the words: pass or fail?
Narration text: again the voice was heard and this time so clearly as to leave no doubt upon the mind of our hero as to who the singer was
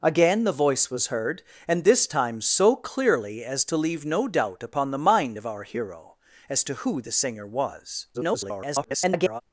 fail